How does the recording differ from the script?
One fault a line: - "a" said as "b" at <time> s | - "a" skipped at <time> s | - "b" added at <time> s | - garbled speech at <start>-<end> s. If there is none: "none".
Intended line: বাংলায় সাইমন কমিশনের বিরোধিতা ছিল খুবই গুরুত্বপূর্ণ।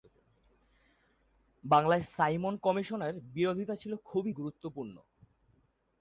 none